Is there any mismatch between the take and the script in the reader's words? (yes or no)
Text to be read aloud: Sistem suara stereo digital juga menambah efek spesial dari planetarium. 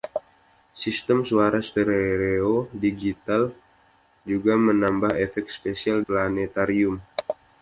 yes